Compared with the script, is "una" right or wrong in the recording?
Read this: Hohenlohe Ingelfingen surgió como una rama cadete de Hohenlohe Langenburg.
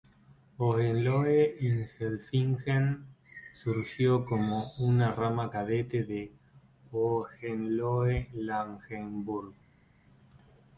right